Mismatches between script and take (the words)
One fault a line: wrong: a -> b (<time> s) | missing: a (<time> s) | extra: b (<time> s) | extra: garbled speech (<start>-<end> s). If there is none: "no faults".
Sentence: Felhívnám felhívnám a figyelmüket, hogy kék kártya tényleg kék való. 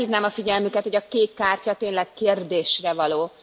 missing: felhívnám (0.3 s)
extra: a (1.0 s)
wrong: kék -> kérdésre (2.1 s)